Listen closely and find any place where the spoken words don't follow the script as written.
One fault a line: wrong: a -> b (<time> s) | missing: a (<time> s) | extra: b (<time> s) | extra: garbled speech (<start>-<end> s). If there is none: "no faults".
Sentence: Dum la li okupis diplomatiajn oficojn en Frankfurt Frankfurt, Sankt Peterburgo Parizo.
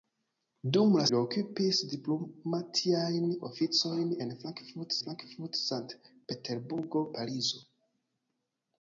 no faults